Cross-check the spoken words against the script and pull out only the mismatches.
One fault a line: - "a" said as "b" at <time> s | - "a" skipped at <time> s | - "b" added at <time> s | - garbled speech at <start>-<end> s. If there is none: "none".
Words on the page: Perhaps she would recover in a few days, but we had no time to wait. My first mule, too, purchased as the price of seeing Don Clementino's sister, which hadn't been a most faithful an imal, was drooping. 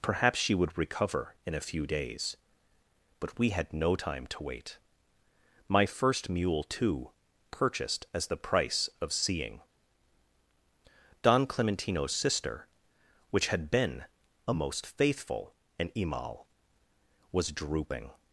- "hadn't" said as "had" at 13.5 s